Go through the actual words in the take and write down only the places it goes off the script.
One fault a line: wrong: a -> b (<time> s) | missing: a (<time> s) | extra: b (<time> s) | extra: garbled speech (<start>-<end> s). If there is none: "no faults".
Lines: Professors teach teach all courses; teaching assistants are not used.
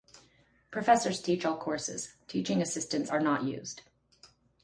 missing: teach (1.4 s)